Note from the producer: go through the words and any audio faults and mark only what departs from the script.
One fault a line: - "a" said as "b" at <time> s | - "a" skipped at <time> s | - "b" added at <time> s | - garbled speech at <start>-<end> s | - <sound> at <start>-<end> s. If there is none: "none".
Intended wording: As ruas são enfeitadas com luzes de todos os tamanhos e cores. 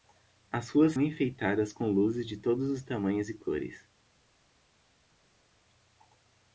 - "são" skipped at 0.9 s